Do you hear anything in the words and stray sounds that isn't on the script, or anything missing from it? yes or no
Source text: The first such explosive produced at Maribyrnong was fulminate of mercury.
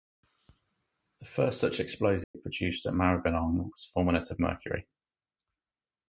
yes